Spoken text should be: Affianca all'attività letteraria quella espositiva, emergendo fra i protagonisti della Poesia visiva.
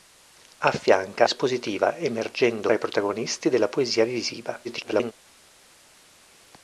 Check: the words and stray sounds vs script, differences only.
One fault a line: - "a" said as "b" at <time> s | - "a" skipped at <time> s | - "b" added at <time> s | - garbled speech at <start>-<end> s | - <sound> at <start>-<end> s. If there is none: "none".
- "all'attività letteraria quella" skipped at 1.3 s
- "fra" skipped at 2.7 s
- garbled speech at 4.6-5.1 s